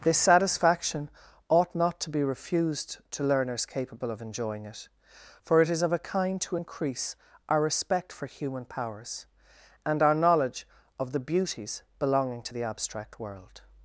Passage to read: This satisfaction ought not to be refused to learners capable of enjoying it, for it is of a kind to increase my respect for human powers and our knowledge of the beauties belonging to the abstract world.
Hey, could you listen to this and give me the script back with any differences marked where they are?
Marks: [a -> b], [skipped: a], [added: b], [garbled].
This satisfaction ought not to be refused to learners capable of enjoying it, for it is of a kind to increase [my -> our] respect for human powers and our knowledge of the beauties belonging to the abstract world.